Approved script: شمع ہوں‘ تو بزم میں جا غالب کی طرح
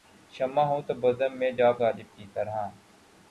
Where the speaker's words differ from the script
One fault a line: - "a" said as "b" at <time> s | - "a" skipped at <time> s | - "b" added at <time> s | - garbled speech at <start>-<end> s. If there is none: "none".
none